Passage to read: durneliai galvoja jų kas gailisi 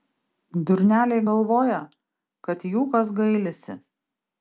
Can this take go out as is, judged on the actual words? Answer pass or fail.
fail